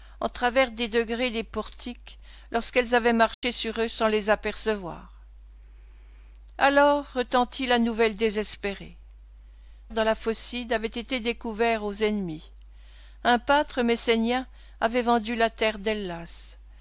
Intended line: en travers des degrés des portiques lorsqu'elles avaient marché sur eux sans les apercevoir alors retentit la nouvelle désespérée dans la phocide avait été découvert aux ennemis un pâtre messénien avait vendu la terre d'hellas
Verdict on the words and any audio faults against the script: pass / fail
fail